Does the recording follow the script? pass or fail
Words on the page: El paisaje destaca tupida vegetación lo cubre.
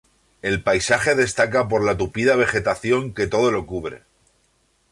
fail